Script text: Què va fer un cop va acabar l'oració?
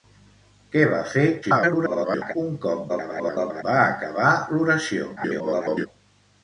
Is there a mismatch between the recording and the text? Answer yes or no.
yes